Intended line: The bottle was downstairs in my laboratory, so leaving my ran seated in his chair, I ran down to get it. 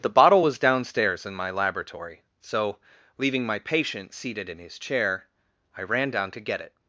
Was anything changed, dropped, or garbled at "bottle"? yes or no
no